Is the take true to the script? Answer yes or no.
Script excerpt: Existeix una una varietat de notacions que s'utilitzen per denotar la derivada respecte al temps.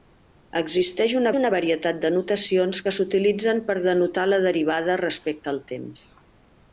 yes